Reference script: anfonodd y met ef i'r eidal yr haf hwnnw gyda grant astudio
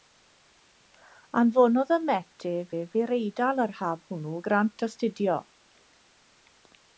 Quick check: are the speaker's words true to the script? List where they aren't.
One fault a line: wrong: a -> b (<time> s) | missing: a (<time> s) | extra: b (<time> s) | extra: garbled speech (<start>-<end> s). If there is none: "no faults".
extra: ef (2.7 s)
missing: gyda (4.4 s)